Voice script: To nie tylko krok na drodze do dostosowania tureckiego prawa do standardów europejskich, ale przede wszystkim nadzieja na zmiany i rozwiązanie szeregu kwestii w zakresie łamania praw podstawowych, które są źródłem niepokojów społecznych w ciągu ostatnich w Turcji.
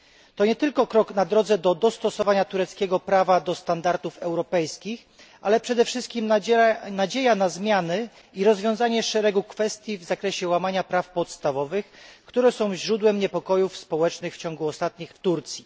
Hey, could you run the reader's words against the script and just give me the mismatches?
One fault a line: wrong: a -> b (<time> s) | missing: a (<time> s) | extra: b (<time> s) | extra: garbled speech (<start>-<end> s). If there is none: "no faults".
no faults